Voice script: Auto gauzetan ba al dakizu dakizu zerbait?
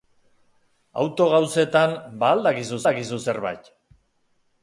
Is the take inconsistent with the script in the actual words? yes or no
no